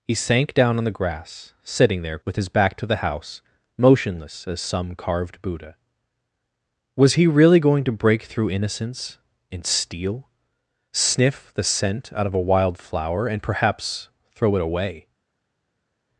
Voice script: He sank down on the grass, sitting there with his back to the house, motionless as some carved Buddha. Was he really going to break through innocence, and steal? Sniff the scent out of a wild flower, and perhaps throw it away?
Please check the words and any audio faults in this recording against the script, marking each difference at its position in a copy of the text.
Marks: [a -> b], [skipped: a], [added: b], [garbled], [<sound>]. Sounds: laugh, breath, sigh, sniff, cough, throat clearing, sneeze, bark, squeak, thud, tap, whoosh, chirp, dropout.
He sank down on the grass, sitting there with his back to the house, motionless as some carved Buddha. Was he really going to break through innocence, and steal? Sniff the scent out of a wild flower, and perhaps throw it away?